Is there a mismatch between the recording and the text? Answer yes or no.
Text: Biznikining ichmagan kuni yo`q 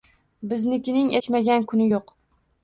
no